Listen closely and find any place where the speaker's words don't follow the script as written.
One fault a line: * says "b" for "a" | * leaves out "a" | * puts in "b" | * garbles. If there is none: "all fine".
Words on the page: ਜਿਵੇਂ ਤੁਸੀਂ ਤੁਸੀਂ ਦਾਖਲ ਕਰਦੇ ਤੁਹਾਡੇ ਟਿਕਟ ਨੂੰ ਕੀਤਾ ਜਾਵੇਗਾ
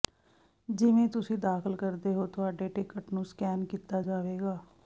* leaves out "ਤੁਸੀਂ"
* puts in "ਹੋ"
* puts in "ਸਕੈਨ"